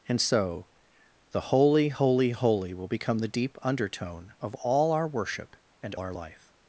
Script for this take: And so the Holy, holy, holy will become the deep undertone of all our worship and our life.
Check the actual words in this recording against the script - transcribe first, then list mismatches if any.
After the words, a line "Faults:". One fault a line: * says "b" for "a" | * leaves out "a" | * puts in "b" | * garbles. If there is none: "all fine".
And so the Holy, holy, holy will become the deep undertone of all our worship and our life.
Faults:
all fine